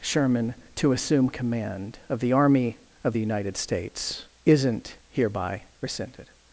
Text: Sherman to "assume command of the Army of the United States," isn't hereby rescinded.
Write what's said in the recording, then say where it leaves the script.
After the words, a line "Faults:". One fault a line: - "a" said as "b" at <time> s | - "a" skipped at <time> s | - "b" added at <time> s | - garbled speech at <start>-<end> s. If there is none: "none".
Sherman to "assume command of the Army of the United States," isn't hereby rescinded.
Faults:
none